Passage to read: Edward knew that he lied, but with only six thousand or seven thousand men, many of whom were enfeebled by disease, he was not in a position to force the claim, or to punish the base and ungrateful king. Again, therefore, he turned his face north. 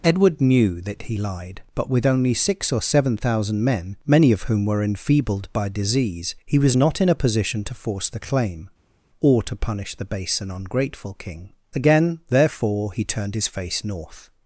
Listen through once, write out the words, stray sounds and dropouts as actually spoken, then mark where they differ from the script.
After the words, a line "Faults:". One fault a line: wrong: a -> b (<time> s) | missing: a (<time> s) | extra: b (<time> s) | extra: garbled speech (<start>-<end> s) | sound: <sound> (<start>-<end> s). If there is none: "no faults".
Edward knew that he lied, but with only six or seven thousand men, many of whom were enfeebled by disease, he was not in a position to force the claim, or to punish the base and ungrateful king. Again, therefore, he turned his face north.
Faults:
missing: thousand (2.7 s)